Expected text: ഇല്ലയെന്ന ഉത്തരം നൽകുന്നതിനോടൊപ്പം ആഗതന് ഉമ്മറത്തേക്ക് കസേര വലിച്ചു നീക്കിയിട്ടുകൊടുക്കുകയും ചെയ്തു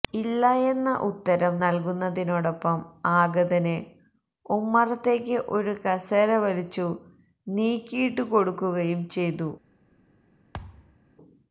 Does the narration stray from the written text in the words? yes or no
yes